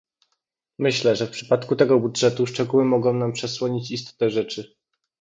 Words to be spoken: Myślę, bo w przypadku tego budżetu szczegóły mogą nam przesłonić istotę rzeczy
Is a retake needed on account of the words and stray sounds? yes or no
yes